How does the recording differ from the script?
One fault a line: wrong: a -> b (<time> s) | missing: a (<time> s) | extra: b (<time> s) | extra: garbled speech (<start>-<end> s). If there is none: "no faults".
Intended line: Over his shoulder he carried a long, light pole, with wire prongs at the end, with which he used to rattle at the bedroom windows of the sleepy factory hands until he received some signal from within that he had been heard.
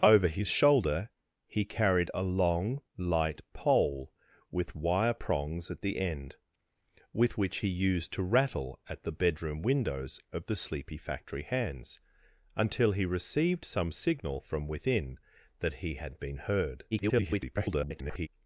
extra: garbled speech (16.9-18.3 s)